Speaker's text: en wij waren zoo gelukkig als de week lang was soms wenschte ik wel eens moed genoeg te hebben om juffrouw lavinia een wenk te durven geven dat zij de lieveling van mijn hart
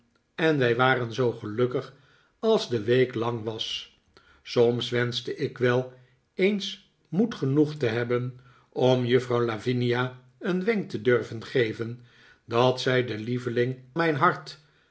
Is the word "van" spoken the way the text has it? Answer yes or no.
no